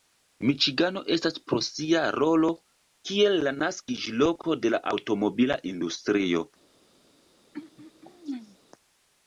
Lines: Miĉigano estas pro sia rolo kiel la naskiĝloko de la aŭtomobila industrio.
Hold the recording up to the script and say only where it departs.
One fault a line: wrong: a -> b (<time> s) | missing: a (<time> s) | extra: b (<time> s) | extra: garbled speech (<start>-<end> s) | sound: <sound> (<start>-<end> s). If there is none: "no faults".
sound: throat clearing (7.5-8.6 s)